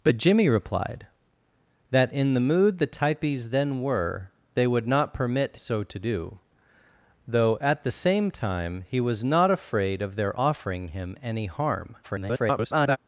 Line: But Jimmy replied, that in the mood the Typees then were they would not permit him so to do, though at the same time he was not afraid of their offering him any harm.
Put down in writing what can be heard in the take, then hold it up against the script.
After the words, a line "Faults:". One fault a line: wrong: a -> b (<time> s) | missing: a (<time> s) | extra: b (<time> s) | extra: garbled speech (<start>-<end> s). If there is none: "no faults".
But Jimmy replied, that in the mood the Typees then were they would not permit so to do, though at the same time he was not afraid of their offering him any harm. [garbled]
Faults:
missing: him (5.6 s)
extra: garbled speech (12.0-13.0 s)